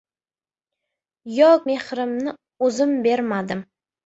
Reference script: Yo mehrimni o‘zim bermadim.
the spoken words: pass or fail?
pass